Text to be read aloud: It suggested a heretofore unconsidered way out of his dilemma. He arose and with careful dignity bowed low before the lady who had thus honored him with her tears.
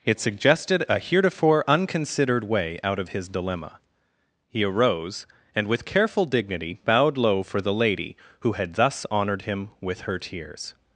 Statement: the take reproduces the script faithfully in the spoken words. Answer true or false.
false